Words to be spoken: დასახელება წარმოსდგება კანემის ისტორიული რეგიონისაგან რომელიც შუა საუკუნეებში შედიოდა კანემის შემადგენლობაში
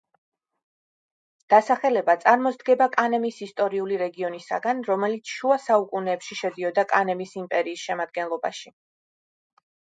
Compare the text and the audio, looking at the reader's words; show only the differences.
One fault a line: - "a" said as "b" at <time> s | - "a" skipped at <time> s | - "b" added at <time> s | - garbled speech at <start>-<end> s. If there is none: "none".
- "იმპერიის" added at 7.5 s